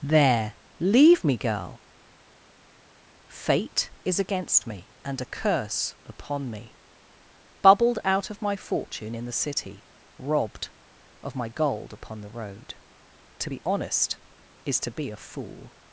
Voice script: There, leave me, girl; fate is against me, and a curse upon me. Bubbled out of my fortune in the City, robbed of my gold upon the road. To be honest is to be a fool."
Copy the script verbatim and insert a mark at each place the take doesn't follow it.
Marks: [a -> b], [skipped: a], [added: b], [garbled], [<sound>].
There, leave me, girl; fate is against me, and a curse upon me. Bubbled out of my fortune in the City, robbed of my gold upon the road. To be honest is to be a fool."